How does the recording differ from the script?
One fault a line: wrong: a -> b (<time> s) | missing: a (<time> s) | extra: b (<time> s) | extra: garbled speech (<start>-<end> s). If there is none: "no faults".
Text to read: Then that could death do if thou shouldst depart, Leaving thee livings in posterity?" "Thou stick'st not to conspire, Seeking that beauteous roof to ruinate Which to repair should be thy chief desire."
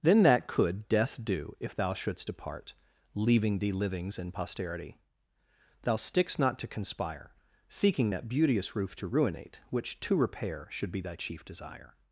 no faults